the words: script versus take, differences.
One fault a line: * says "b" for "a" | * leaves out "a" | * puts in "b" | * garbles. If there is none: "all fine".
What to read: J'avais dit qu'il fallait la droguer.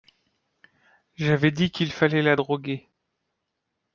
all fine